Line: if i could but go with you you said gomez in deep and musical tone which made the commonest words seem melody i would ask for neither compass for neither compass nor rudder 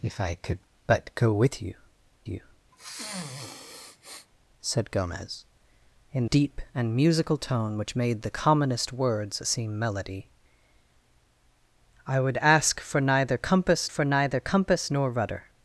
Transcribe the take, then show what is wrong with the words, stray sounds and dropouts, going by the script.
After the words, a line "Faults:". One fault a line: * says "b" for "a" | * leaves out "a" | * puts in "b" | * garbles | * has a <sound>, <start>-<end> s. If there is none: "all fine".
if i could but go with you you said gomez in deep and musical tone which made the commonest words seem melody i would ask for neither compass for neither compass nor rudder
Faults:
* has a sniff, 2.7-4.3 s